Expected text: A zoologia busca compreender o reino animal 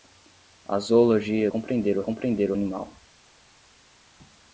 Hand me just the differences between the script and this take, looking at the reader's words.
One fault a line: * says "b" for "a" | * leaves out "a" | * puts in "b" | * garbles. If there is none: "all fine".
* leaves out "busca"
* says "compreender" for "reino"